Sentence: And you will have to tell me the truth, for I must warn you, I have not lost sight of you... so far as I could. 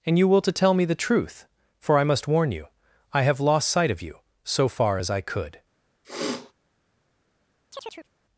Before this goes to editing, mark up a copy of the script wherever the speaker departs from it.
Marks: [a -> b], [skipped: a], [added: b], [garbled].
And you will [skipped: have] to tell me the truth, for I must warn you, I have [skipped: not] lost sight of you... so far as I could.